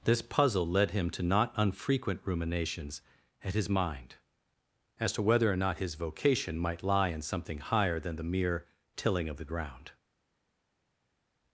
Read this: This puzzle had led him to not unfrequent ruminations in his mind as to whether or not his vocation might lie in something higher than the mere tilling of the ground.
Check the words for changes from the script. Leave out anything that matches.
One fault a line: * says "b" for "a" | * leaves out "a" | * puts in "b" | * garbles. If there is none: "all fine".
* leaves out "had"
* says "at" for "in"